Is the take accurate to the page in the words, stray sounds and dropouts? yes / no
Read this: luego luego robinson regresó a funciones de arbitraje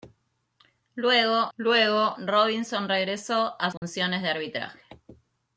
no